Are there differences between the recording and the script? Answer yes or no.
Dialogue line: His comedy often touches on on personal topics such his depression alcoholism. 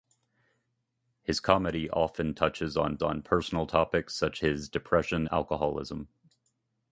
no